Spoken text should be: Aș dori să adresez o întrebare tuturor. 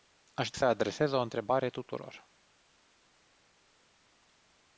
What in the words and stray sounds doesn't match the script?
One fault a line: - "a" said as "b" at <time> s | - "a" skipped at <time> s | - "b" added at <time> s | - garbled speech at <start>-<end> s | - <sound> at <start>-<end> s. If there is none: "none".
- "dori" skipped at 0.5 s